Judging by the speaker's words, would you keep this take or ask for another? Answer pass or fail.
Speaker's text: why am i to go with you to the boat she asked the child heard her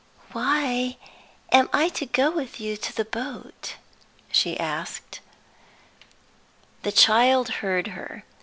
pass